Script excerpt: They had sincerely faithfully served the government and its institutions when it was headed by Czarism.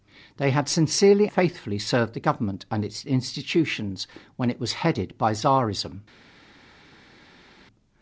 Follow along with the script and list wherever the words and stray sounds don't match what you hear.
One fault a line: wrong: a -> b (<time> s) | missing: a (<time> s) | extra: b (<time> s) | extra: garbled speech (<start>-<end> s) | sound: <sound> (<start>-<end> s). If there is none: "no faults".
no faults